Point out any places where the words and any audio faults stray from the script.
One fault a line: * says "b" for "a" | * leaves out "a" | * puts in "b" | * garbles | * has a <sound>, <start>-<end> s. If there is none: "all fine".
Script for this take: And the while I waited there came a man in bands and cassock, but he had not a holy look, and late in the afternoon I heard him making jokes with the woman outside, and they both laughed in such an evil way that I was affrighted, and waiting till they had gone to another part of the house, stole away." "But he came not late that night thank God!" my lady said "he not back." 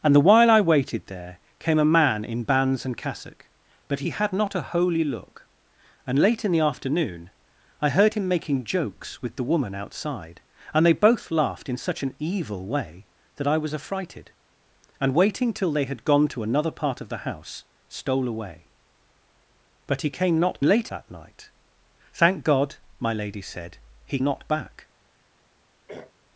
* has a throat clearing, 25.9-26.1 s